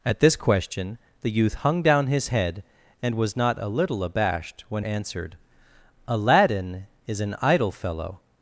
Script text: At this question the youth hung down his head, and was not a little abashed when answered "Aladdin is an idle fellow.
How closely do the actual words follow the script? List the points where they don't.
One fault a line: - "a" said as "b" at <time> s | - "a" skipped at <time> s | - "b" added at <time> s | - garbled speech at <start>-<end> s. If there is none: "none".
none